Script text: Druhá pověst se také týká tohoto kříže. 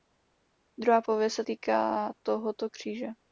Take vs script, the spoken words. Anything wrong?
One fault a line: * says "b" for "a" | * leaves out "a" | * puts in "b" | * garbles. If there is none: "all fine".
* leaves out "také"